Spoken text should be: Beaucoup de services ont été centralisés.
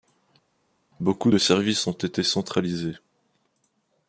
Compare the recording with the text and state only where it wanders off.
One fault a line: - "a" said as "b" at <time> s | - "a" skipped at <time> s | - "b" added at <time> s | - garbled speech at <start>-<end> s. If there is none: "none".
none